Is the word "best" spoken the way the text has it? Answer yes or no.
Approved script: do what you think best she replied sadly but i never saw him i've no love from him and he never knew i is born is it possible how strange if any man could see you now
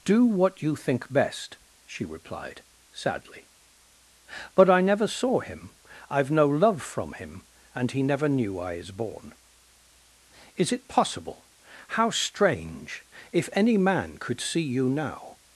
yes